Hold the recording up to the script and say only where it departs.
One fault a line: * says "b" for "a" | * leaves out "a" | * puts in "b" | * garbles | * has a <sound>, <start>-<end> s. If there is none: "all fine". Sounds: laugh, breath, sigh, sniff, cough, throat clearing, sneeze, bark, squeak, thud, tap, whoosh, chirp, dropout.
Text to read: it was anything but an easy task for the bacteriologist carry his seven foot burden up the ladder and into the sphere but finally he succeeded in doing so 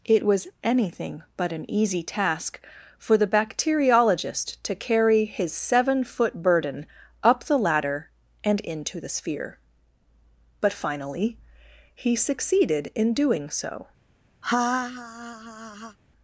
* puts in "to"
* has a laugh, 14.4-16.0 s